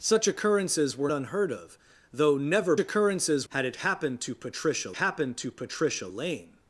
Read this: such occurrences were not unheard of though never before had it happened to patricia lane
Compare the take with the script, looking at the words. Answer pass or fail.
fail